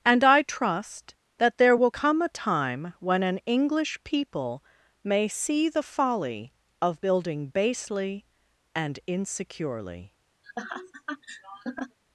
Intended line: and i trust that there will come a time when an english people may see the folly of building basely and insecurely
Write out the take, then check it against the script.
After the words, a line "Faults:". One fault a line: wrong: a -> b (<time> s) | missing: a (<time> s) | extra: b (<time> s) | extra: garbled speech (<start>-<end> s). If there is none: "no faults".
and i trust that there will come a time when an english people may see the folly of building basely and insecurely
Faults:
no faults